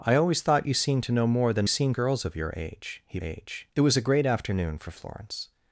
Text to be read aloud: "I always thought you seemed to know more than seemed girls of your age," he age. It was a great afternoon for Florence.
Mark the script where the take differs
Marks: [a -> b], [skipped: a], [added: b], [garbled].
"I always thought you seemed to know more than seemed girls of your age," he age. It was a great afternoon for Florence.